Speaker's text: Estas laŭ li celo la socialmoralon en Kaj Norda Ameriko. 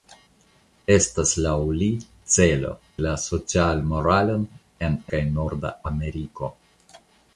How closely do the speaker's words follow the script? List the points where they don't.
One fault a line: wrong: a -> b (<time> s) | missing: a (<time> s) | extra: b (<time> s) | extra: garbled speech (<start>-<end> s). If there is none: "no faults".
no faults